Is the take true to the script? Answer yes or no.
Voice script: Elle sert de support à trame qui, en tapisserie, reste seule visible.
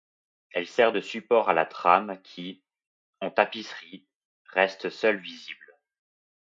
no